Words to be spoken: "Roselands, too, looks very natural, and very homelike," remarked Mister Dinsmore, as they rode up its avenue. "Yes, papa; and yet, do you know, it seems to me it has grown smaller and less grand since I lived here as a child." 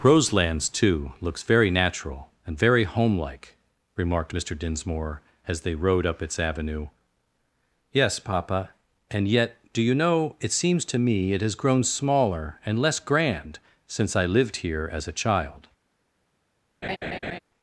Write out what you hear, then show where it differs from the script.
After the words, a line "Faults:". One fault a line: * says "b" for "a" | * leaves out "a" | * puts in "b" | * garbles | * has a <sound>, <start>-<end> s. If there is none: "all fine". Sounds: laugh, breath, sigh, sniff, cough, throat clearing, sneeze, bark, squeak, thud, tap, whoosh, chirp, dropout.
"Roselands, too, looks very natural, and very homelike," remarked Mister Dinsmore, as they rode up its avenue. "Yes, papa; and yet, do you know, it seems to me it has grown smaller and less grand since I lived here as a child."
Faults:
* has a laugh, 16.8-17.4 s